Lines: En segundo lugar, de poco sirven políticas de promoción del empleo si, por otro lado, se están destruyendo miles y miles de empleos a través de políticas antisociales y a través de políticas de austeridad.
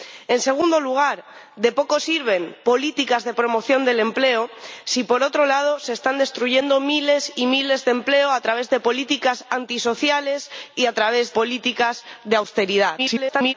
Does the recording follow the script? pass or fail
fail